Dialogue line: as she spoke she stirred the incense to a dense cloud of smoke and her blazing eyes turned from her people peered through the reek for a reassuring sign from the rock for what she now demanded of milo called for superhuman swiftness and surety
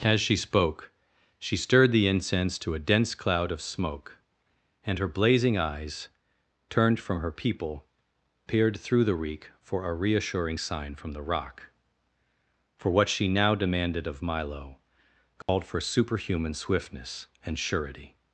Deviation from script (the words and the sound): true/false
true